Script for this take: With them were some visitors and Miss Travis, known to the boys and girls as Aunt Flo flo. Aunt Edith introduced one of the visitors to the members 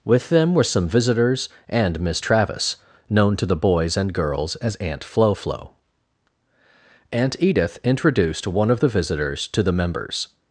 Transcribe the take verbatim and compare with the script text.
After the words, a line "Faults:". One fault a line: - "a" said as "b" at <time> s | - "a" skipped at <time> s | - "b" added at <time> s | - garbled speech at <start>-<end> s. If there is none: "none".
With them were some visitors and Miss Travis, known to the boys and girls as Aunt Flo flo. Aunt Edith introduced one of the visitors to the members
Faults:
none